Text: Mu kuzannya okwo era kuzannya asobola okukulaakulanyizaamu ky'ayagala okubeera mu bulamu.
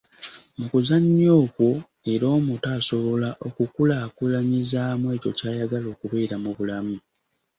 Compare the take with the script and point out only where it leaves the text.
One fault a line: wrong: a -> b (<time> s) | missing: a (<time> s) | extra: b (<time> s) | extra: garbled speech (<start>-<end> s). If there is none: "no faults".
wrong: kuzannya -> omuto (2.4 s)
extra: ekyo (5.2 s)